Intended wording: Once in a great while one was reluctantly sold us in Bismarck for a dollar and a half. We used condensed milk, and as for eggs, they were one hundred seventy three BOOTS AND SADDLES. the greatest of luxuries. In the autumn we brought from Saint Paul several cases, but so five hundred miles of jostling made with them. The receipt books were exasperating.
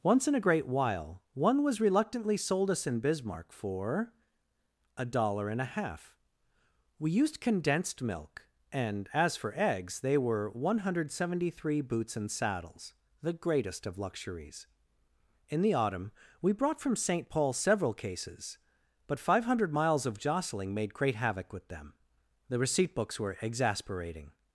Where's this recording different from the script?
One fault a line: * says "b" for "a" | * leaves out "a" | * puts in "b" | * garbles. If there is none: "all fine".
* leaves out "so"
* puts in "great havoc"